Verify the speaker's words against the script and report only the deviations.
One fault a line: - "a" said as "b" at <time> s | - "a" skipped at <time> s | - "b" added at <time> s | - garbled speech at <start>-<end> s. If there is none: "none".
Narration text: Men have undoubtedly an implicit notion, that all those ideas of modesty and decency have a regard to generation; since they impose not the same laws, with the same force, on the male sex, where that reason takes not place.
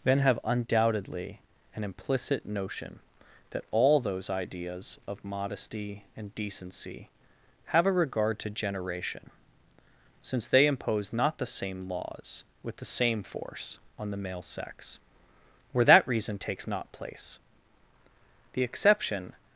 - "The exception" added at 18.5 s